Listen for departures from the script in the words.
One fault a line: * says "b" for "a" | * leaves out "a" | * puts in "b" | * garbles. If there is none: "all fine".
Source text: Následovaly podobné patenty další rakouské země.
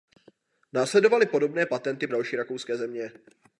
all fine